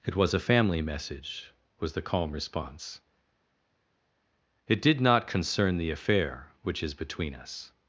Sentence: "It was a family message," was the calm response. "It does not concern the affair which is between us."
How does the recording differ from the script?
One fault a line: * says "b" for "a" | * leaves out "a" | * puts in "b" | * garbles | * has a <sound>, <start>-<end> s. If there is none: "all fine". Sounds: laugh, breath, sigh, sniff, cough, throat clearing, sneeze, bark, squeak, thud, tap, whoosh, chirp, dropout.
* says "did" for "does"